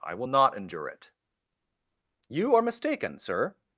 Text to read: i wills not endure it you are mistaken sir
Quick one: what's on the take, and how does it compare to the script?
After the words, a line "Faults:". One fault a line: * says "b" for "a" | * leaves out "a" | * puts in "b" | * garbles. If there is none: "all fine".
i will not endure it you are mistaken sir
Faults:
* says "will" for "wills"